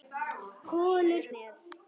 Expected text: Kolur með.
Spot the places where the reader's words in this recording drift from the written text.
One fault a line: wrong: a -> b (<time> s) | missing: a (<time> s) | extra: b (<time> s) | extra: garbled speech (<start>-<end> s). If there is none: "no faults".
no faults